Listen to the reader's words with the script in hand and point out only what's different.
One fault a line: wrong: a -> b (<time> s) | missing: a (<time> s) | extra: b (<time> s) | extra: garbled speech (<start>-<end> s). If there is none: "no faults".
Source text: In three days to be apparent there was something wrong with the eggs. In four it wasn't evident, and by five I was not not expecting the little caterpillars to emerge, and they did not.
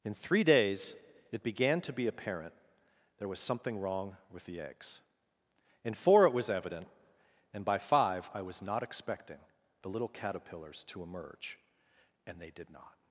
extra: it began (1.3 s)
wrong: wasn't -> was (6.3 s)
missing: not (8.8 s)